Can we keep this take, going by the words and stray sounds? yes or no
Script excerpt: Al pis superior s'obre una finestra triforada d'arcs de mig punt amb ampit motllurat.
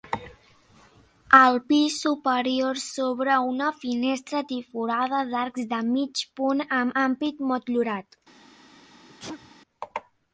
no